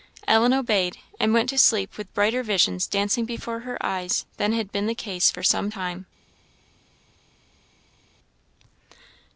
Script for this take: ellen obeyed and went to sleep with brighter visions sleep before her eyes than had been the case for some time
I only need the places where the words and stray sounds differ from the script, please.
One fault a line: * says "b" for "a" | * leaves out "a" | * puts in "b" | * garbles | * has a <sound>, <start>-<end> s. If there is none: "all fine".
* says "dancing" for "sleep"